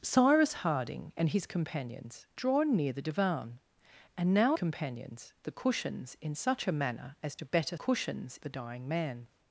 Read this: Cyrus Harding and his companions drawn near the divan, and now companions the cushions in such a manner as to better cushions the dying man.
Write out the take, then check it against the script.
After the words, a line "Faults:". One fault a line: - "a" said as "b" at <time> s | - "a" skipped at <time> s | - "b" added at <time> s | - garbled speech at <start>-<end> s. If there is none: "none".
Cyrus Harding and his companions drawn near the divan, and now companions the cushions in such a manner as to better cushions the dying man.
Faults:
none